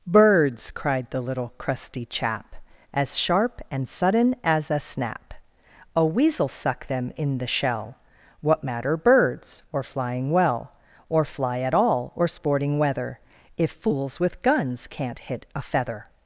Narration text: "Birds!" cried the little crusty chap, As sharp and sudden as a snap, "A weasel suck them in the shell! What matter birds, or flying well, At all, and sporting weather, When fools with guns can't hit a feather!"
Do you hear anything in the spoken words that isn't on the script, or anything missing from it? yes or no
yes